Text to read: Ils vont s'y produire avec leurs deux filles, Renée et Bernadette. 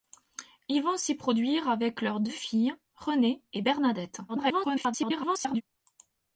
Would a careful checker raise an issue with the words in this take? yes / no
yes